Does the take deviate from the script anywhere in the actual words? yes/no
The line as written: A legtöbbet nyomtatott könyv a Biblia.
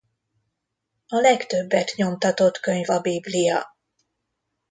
no